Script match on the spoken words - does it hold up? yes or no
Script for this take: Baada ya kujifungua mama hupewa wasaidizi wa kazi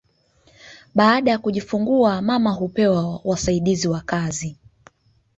yes